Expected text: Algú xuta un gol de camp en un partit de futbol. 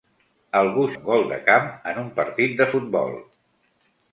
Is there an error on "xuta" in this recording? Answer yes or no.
yes